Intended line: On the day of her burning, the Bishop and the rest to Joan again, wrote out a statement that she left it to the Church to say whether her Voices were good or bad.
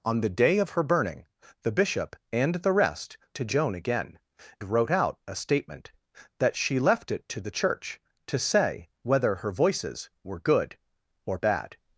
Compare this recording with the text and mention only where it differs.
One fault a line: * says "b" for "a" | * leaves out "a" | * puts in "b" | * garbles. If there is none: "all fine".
all fine